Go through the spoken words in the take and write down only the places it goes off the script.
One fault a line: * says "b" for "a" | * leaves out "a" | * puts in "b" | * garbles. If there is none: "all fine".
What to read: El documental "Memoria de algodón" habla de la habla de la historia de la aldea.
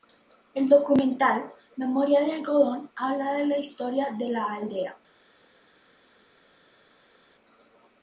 * leaves out "habla de la"